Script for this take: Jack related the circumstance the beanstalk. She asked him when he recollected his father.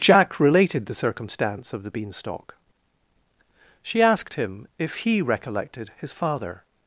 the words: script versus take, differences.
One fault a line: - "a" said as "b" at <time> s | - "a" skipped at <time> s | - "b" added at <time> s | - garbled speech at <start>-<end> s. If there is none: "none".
- "of" added at 1.7 s
- "when" said as "if" at 4.8 s